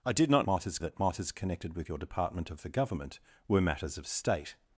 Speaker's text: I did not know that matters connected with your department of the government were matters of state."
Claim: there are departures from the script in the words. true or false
true